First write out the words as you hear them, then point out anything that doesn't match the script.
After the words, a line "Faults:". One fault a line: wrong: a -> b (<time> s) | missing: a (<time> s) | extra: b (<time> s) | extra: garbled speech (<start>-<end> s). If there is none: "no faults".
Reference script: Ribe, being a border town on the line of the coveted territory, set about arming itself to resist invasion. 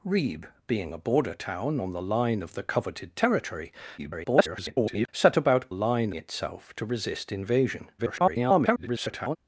Ribe, being a border town on the line of the coveted territory, [garbled] set about line itself to resist invasion. [garbled]
Faults:
extra: garbled speech (4.0-5.1 s)
wrong: arming -> line (5.7 s)
extra: garbled speech (8.0-9.4 s)